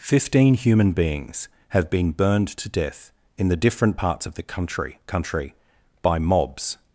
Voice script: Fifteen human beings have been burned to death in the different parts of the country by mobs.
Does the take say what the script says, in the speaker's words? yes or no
no